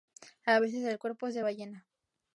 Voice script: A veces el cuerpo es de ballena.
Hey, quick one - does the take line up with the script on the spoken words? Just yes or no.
yes